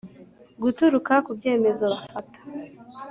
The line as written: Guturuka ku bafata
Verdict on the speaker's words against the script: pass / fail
fail